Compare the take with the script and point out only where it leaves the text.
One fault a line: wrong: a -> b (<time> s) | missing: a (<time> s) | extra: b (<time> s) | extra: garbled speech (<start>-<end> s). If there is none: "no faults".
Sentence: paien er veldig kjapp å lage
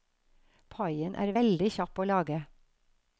no faults